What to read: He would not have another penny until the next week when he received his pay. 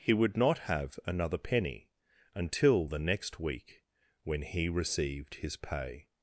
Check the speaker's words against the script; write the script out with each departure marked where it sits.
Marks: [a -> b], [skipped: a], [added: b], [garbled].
He would not have another penny until the next week when he received his pay.